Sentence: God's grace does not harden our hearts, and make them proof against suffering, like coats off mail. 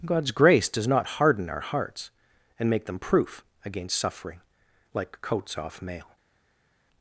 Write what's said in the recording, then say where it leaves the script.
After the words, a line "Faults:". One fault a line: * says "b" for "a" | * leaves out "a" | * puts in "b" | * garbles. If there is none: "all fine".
God's grace does not harden our hearts, and make them proof against suffering, like coats off mail.
Faults:
all fine